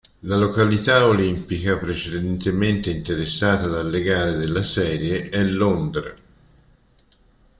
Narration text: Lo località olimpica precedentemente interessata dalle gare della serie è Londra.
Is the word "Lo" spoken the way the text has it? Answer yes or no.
no